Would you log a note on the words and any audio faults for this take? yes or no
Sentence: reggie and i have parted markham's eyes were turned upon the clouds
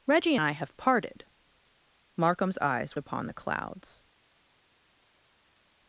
yes